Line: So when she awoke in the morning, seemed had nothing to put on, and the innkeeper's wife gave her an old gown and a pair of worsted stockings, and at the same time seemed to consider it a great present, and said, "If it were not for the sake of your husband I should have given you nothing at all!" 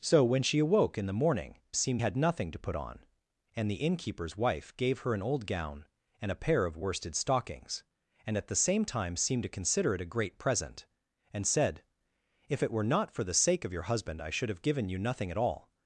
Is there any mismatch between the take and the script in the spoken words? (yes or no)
no